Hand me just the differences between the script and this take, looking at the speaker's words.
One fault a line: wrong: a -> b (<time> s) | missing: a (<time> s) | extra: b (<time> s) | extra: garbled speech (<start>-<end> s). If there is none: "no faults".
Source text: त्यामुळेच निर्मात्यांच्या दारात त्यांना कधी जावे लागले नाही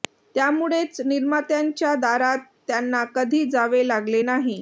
no faults